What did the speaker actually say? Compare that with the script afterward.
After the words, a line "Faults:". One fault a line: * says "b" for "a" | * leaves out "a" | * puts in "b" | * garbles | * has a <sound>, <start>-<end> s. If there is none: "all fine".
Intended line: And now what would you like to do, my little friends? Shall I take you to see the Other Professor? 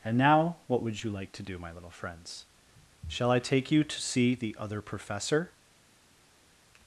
And now what would you like to do, my little friends? Shall I take you to see the Other Professor?
Faults:
all fine